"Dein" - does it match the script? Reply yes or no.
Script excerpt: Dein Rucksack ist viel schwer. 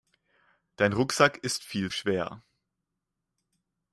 yes